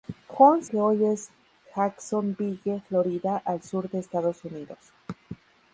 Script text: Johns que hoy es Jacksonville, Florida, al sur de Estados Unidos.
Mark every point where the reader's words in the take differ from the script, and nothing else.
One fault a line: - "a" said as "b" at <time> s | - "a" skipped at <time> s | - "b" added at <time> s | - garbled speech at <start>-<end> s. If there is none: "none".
none